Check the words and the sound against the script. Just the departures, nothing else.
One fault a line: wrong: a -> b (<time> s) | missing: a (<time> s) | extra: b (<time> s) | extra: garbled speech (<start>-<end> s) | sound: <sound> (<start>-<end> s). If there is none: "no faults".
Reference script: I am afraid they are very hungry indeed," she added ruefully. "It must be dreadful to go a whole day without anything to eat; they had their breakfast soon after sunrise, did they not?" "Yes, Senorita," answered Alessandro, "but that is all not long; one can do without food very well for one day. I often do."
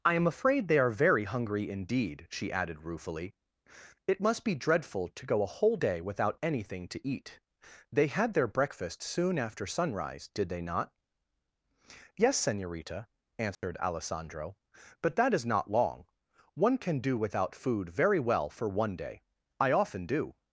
sound: dropout (13.5-13.6 s)
missing: all (15.4 s)